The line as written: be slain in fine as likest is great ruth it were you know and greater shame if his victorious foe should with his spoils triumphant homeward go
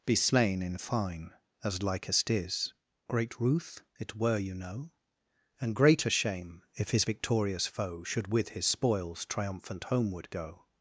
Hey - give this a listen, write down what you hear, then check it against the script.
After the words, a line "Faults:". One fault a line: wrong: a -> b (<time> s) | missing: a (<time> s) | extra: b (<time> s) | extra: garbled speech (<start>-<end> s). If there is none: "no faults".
be slain in fine as likest is great ruth it were you know and greater shame if his victorious foe should with his spoils triumphant homeward go
Faults:
no faults